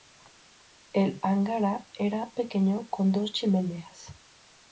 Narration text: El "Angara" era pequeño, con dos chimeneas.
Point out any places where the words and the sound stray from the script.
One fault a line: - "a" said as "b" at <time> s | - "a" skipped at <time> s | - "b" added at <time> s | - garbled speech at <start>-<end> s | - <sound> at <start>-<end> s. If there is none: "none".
none